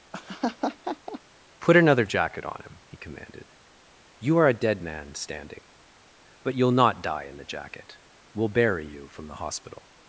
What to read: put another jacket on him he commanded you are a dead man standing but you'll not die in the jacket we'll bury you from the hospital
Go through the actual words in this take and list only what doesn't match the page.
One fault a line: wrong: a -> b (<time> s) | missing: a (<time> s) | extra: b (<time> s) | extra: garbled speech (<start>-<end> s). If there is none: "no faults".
no faults